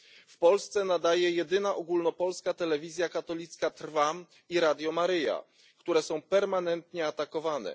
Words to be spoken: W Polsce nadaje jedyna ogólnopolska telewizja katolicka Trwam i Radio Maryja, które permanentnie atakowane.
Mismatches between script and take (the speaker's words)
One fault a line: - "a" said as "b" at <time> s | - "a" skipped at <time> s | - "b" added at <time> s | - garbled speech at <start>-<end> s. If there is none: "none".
- "są" added at 6.0 s